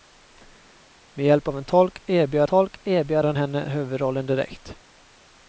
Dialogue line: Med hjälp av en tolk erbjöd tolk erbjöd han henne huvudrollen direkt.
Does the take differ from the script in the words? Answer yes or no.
no